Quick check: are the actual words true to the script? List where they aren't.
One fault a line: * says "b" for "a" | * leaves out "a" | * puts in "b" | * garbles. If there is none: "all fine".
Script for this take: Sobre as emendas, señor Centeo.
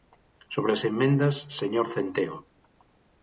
all fine